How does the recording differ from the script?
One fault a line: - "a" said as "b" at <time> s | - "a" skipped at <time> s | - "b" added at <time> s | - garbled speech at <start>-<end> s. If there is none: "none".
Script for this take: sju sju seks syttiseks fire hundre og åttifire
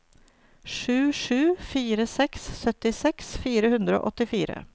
- "fire" added at 1.7 s